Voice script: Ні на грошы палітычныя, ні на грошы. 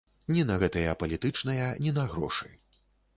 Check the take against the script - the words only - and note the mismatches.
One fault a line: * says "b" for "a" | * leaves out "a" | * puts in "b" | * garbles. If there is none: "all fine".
* says "гэтыя" for "грошы"